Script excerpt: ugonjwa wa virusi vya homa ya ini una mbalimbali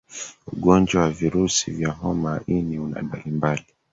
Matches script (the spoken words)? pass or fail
pass